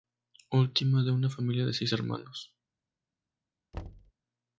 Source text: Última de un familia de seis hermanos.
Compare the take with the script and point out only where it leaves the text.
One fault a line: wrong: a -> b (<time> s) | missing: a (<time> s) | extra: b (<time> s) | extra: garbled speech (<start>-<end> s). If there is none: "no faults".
wrong: un -> una (1.1 s)